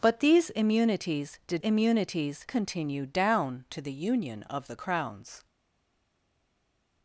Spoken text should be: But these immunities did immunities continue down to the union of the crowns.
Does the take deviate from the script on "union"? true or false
false